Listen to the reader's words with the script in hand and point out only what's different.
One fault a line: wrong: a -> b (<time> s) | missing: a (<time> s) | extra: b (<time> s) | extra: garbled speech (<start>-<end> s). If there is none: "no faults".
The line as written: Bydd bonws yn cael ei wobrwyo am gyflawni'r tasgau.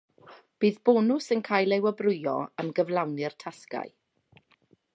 no faults